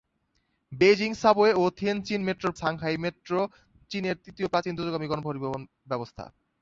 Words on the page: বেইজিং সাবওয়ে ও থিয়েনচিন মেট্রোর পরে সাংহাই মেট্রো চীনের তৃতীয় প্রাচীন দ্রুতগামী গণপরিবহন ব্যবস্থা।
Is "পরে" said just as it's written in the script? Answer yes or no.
no